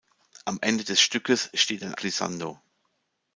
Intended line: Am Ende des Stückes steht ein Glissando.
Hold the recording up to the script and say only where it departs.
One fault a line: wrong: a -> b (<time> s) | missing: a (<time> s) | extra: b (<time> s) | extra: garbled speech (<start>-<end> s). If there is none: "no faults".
no faults